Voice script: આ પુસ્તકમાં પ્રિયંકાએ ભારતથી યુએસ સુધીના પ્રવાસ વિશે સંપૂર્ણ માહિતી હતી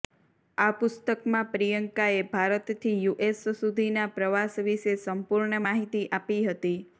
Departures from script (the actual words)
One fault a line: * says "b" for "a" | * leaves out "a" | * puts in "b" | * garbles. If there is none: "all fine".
* puts in "આપી"